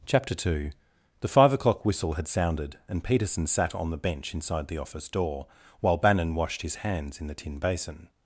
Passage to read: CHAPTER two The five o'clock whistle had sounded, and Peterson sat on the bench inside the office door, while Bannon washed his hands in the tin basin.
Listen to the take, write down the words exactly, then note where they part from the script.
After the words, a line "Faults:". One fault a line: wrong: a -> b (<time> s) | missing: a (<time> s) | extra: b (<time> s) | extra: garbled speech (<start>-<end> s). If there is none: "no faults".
CHAPTER two The five o'clock whistle had sounded, and Peterson sat on the bench inside the office door, while Bannon washed his hands in the tin basin.
Faults:
no faults